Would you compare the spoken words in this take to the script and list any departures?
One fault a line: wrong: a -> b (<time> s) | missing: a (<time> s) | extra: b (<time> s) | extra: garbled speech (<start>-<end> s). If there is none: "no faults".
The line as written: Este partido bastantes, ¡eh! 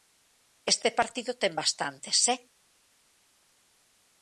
extra: ten (1.4 s)